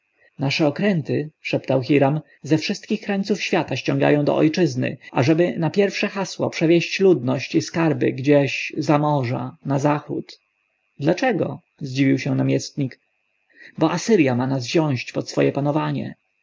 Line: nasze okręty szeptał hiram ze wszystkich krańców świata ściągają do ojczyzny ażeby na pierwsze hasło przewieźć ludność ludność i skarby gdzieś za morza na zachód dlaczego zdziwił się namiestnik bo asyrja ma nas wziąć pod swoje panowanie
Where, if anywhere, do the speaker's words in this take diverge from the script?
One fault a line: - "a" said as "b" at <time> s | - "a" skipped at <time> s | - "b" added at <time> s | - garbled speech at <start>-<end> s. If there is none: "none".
- "ludność" skipped at 7.5 s